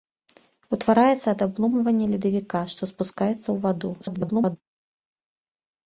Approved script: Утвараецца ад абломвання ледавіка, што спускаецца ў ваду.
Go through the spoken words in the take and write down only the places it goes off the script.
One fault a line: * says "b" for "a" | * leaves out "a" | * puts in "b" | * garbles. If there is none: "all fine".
* garbles